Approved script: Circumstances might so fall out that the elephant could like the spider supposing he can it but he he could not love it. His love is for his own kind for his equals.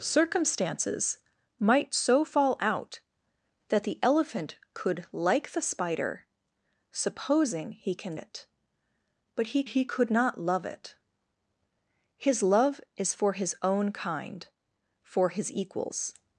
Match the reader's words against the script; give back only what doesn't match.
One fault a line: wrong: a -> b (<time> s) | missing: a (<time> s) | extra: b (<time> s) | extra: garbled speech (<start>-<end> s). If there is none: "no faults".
no faults